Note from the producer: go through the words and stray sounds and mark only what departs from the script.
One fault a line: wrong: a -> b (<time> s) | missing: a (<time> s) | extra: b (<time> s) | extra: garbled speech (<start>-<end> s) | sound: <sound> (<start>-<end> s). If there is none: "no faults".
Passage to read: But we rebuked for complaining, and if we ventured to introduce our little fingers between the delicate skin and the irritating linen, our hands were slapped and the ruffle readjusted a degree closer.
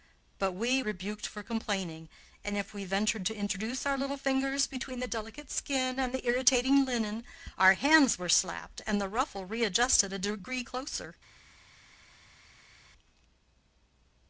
no faults